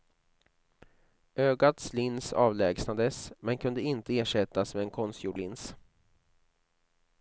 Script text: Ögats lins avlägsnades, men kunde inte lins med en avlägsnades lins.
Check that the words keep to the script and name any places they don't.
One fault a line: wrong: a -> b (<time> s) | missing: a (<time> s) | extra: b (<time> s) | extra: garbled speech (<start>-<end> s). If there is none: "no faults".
wrong: lins -> ersättas (4.2 s)
wrong: avlägsnades -> konstgjord (4.9 s)